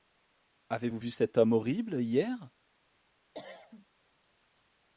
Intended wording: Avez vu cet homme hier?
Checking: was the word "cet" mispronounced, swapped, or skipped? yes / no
no